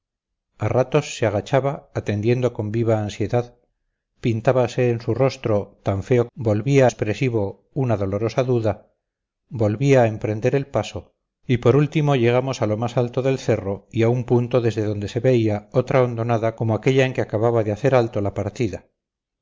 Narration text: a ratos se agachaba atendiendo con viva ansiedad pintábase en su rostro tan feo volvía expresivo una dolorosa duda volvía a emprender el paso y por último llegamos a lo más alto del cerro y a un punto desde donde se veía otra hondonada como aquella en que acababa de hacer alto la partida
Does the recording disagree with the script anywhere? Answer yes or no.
no